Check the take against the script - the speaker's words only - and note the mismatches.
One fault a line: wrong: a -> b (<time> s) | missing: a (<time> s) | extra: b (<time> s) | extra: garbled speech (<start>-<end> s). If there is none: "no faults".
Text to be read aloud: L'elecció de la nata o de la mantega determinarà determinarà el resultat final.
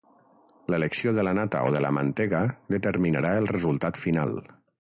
missing: determinarà (3.4 s)